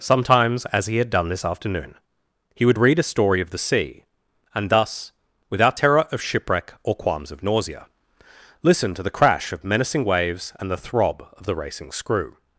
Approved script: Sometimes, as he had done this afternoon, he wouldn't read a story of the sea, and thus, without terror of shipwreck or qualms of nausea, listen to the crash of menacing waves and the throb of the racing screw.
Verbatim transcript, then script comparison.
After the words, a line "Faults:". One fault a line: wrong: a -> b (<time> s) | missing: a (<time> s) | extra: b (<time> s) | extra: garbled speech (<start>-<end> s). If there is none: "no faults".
Sometimes, as he had done this afternoon, he would read a story of the sea, and thus, without terror of shipwreck or qualms of nausea, listen to the crash of menacing waves and the throb of the racing screw.
Faults:
wrong: wouldn't -> would (2.6 s)